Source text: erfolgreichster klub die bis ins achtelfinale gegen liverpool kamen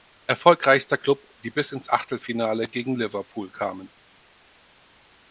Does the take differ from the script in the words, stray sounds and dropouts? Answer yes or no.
no